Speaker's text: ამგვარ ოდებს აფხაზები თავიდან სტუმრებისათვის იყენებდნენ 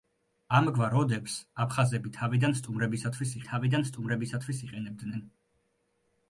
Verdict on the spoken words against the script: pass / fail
fail